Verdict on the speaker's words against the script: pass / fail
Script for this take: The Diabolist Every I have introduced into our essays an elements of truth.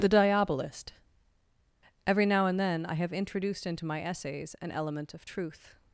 fail